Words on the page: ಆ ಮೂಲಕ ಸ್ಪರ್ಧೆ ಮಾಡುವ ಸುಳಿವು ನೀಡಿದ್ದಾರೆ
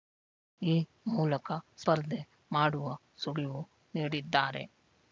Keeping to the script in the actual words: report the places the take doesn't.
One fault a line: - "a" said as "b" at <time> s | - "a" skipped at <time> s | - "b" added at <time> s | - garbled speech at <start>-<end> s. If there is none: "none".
- "ಆ" said as "ಈ" at 0.6 s